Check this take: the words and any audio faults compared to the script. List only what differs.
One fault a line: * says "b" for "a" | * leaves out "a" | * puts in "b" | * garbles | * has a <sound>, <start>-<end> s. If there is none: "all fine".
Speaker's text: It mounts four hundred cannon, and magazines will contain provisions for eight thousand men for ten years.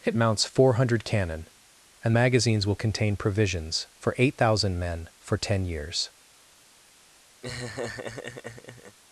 * has a laugh, 7.4-9.0 s